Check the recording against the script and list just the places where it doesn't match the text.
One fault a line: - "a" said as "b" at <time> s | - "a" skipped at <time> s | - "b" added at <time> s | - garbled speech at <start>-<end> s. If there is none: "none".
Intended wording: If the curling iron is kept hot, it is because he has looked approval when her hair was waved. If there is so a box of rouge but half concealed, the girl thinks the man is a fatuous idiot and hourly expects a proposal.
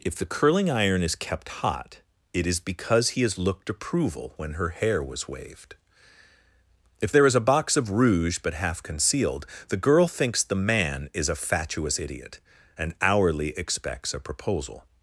- "so" skipped at 7.3 s